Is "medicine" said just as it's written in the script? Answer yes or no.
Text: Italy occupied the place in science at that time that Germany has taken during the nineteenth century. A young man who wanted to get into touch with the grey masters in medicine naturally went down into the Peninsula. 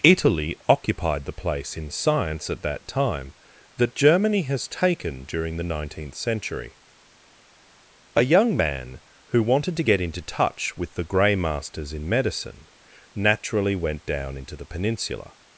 yes